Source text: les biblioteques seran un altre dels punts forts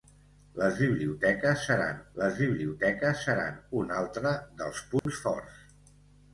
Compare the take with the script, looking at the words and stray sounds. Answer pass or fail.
fail